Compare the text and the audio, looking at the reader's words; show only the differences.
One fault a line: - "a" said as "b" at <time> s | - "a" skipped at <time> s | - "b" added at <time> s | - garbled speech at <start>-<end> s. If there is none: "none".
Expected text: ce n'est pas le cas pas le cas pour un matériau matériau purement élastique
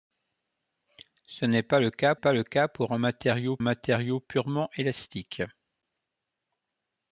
none